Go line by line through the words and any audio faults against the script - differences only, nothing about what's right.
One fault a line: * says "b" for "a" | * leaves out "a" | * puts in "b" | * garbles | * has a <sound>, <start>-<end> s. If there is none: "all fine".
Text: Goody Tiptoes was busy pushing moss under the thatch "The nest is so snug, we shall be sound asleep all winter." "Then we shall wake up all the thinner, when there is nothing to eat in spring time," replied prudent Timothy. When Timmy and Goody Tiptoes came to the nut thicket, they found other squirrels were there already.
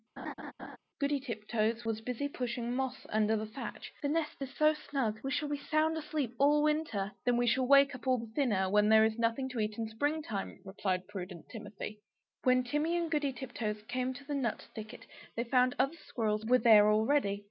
* has a laugh, 0.2-0.8 s